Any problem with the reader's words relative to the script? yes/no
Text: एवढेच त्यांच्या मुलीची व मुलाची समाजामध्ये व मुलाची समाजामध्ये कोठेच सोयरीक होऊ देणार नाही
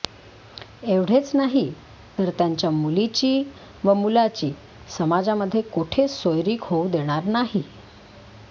yes